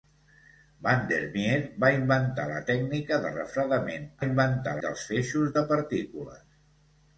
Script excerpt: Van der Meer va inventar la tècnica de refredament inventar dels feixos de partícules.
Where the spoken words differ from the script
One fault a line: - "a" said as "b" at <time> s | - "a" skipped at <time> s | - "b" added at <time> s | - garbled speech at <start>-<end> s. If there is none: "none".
none